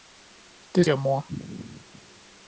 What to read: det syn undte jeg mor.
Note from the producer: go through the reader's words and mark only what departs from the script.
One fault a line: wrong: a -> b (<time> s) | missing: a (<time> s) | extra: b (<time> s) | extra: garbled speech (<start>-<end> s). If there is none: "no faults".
missing: syn undte (0.8 s)